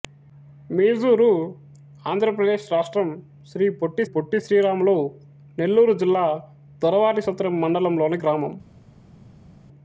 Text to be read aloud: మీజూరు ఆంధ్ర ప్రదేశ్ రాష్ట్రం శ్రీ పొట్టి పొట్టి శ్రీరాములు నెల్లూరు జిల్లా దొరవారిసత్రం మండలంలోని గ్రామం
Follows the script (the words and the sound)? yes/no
yes